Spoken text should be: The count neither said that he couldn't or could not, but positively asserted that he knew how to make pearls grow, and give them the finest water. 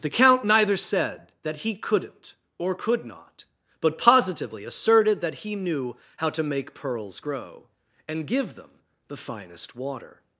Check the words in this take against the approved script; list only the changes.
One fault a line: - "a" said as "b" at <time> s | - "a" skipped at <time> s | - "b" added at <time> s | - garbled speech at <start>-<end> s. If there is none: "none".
none